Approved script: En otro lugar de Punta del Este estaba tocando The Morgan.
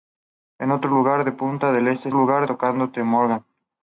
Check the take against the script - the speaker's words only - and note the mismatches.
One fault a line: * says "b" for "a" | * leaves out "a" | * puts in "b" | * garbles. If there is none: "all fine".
* says "lugar" for "estaba"